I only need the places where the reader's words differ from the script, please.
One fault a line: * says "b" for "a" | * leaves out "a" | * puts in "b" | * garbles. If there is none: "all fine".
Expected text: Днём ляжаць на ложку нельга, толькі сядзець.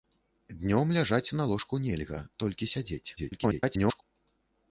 * garbles